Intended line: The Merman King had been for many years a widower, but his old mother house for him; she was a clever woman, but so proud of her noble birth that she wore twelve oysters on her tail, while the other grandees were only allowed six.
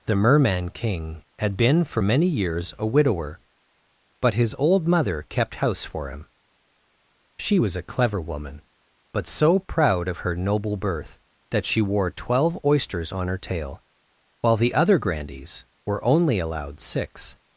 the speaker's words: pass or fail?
fail